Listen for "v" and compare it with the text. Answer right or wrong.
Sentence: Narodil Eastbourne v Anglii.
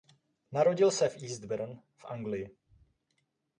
right